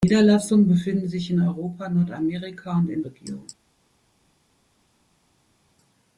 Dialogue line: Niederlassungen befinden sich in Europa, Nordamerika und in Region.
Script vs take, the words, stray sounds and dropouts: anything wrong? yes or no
no